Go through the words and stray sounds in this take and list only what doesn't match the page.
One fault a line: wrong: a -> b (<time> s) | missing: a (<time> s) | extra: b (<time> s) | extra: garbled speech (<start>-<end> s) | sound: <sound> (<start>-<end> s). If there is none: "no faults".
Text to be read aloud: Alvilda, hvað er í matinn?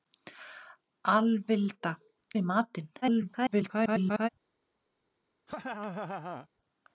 missing: hvað (1.9 s)
extra: garbled speech (3.0-4.3 s)
sound: laugh (5.5-6.5 s)